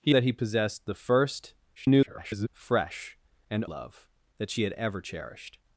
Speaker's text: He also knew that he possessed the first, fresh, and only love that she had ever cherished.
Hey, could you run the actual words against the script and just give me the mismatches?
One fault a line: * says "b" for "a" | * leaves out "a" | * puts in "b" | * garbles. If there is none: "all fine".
* leaves out "also knew"
* garbles
* leaves out "only"